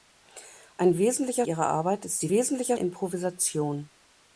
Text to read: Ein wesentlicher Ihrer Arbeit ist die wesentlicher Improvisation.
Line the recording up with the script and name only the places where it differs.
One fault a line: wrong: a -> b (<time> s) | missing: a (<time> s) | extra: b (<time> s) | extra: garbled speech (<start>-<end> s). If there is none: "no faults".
no faults